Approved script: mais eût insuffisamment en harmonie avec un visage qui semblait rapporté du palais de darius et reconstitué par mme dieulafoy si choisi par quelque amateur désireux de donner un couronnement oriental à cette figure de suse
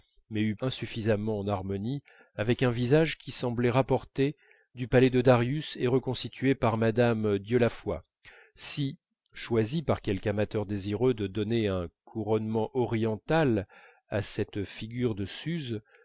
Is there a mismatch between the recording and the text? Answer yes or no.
no